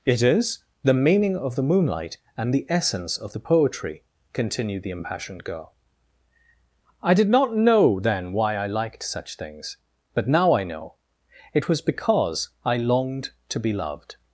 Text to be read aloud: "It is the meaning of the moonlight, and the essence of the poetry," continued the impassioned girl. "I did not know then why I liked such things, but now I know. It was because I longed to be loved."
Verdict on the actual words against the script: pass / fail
pass